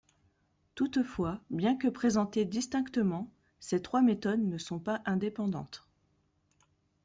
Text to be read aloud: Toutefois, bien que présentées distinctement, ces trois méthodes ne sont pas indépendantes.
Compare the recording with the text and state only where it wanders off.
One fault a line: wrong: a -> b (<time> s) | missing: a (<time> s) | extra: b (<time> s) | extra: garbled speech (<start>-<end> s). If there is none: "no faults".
no faults